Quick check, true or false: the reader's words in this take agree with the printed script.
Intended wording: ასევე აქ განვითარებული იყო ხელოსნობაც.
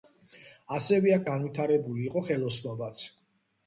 true